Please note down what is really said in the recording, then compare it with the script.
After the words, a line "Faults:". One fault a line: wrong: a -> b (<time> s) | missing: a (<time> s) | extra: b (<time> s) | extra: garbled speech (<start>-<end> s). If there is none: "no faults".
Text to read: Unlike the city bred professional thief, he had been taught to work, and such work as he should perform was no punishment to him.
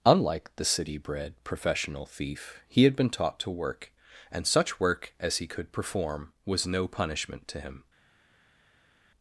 Unlike the city bred professional thief, he had been taught to work, and such work as he could perform was no punishment to him.
Faults:
wrong: should -> could (5.5 s)